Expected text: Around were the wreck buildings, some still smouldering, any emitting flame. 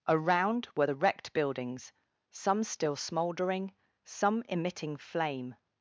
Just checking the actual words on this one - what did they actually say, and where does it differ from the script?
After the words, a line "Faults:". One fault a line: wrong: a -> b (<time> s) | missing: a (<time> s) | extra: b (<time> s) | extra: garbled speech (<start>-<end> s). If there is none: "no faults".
Around were the wrecked buildings, some still smouldering, some emitting flame.
Faults:
wrong: wreck -> wrecked (0.9 s)
wrong: any -> some (4.0 s)